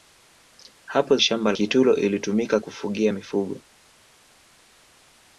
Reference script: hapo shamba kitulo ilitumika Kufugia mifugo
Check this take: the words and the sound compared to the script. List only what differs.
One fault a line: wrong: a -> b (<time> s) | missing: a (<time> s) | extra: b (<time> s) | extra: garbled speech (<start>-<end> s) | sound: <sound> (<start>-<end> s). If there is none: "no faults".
no faults